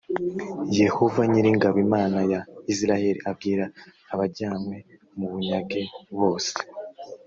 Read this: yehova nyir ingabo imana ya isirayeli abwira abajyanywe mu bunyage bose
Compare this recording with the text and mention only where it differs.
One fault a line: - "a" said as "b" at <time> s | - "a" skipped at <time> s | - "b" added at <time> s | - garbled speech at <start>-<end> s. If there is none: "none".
none